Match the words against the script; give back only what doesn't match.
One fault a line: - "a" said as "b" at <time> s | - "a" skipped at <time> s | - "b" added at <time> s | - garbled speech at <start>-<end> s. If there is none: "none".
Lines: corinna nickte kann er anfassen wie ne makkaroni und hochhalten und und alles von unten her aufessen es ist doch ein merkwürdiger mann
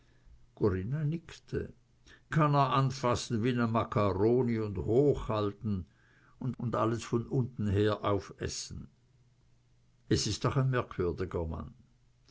none